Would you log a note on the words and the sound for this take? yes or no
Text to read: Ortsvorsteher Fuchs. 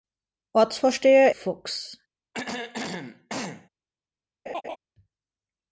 yes